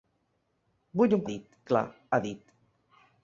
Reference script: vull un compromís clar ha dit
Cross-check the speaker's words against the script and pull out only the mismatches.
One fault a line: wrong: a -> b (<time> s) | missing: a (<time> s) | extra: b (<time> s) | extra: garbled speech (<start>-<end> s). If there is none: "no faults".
wrong: compromís -> dit (1.3 s)